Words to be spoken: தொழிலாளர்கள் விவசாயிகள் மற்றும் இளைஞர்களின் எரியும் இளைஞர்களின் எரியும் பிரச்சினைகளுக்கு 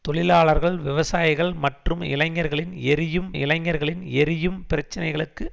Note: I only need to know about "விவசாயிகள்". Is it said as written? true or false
true